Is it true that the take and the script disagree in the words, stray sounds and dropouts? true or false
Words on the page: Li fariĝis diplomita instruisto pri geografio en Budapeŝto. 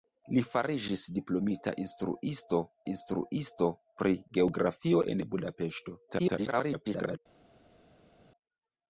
true